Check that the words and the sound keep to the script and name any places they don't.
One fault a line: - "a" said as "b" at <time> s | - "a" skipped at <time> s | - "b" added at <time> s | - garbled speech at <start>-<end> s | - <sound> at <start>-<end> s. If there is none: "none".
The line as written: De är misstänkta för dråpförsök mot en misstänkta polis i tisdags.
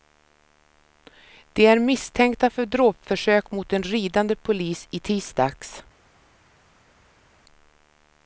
- "misstänkta" said as "ridande" at 3.8 s